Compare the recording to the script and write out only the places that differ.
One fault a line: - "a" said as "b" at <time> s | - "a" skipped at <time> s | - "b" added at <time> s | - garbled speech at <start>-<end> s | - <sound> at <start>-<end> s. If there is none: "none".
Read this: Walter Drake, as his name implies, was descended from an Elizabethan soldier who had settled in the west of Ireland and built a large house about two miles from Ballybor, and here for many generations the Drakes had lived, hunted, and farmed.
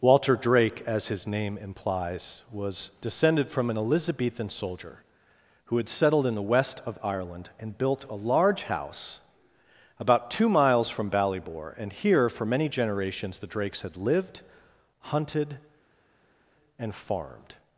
none